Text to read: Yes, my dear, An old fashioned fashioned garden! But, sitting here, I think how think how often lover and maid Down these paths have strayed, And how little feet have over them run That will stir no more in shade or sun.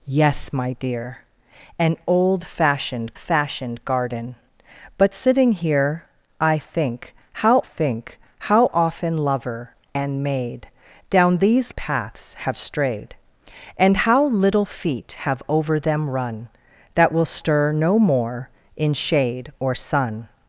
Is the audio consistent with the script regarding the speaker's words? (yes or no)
yes